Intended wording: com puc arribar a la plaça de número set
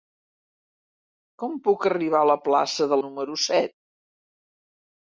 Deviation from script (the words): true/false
false